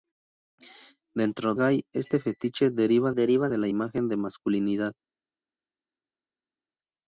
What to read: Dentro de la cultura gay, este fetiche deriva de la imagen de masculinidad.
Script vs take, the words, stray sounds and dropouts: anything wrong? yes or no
yes